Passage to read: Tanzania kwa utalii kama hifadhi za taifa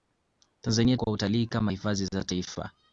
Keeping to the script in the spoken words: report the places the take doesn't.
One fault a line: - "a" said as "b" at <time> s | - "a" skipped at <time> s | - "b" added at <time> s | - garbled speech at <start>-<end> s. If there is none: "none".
none